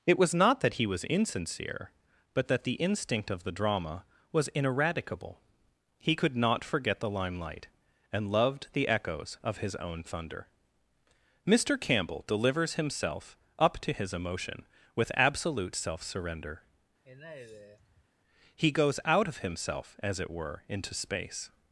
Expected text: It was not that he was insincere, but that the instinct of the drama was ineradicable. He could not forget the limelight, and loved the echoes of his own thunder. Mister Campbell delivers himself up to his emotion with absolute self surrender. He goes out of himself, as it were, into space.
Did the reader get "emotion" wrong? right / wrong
right